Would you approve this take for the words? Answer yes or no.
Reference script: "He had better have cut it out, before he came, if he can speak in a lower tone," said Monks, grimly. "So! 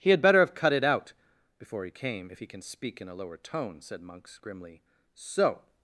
yes